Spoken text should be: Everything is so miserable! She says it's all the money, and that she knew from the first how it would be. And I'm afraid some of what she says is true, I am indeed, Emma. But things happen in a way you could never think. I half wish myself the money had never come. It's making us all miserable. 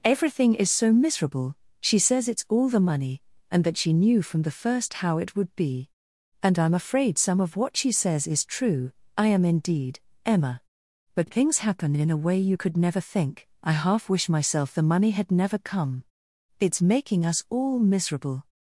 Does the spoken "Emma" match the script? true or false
true